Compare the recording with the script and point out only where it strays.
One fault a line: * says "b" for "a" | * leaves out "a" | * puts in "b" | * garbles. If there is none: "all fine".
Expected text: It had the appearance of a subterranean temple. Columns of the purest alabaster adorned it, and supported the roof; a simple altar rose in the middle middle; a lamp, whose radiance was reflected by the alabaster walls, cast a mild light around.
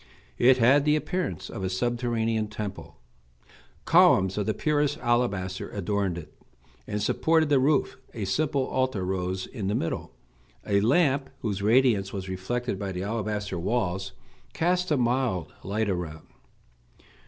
* leaves out "middle"